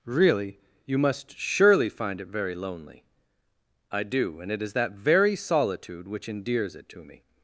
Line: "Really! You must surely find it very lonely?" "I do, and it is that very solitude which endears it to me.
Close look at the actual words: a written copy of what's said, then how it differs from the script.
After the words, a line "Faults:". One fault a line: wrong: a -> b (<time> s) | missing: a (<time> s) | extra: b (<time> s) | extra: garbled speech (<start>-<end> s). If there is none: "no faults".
"Really! You must surely find it very lonely?" "I do, and it is that very solitude which endears it to me.
Faults:
no faults